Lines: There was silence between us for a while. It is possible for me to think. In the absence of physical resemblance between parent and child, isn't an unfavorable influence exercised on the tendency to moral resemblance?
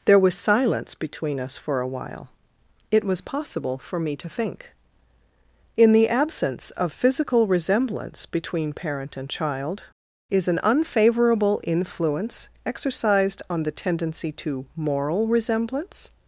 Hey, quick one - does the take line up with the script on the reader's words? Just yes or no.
no